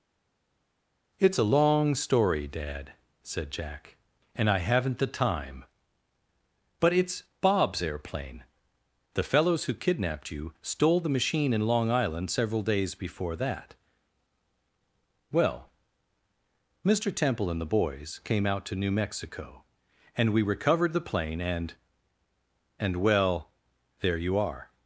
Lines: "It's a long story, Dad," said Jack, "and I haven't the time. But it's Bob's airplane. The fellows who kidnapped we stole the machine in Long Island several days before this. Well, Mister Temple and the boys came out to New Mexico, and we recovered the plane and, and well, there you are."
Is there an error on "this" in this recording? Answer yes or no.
yes